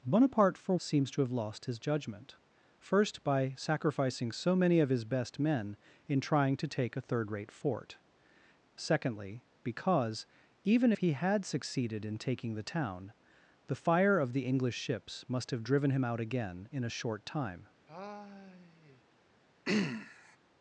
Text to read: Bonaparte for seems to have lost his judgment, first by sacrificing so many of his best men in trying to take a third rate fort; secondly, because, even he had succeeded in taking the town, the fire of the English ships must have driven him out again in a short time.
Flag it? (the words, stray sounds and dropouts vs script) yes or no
yes